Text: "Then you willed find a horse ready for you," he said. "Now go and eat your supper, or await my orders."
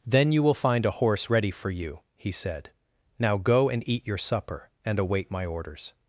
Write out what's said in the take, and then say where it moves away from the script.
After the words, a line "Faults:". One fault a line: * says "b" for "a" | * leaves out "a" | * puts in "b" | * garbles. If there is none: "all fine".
"Then you will find a horse ready for you," he said. "Now go and eat your supper, and await my orders."
Faults:
* says "will" for "willed"
* says "and" for "or"